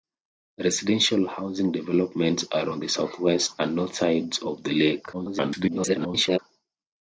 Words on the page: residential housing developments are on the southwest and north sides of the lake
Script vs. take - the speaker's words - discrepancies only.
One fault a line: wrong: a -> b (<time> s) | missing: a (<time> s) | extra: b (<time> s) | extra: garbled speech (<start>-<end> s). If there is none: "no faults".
extra: garbled speech (5.1-6.4 s)